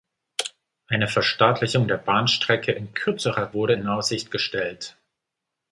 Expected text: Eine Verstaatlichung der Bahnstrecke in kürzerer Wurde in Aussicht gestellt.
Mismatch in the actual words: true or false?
false